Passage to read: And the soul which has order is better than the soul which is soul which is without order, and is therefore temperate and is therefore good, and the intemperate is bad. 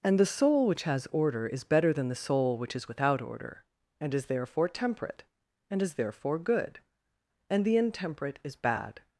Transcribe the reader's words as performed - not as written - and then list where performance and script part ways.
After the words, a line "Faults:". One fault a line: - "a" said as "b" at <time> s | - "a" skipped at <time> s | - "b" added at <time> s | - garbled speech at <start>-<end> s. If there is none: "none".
And the soul which has order is better than the soul which is without order, and is therefore temperate and is therefore good, and the intemperate is bad.
Faults:
- "soul which is" skipped at 2.9 s